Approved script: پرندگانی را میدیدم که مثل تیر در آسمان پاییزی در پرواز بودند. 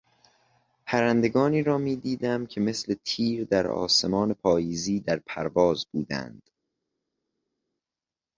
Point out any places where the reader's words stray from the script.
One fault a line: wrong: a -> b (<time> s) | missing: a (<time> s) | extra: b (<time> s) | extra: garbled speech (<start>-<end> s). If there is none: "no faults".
no faults